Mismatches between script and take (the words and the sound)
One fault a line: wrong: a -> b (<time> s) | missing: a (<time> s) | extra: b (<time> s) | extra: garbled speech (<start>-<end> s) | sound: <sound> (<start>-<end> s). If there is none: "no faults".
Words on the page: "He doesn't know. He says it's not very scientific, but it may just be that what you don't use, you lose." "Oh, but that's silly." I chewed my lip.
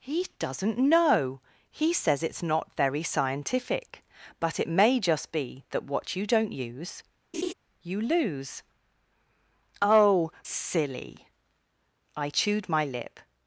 sound: laugh (7.3-7.5 s)
missing: but that's (10.3 s)